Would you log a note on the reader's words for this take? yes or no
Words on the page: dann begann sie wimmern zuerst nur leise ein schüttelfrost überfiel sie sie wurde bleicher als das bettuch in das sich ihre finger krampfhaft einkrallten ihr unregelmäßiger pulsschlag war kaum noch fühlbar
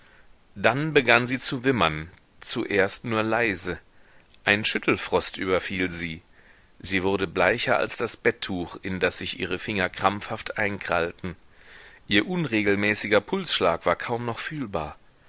yes